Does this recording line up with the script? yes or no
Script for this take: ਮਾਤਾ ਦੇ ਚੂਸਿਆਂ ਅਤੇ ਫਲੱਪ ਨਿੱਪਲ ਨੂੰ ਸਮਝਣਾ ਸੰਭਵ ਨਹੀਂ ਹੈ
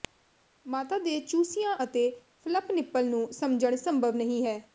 yes